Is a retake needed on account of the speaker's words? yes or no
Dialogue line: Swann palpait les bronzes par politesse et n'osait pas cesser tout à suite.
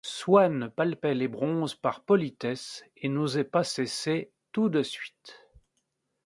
yes